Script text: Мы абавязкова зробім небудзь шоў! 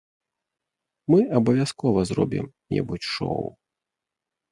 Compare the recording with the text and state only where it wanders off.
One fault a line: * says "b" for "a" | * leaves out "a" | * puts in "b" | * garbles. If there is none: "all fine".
all fine